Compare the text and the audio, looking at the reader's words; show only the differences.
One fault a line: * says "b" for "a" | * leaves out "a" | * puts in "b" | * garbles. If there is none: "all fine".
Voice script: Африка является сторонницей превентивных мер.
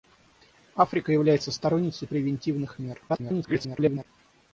* garbles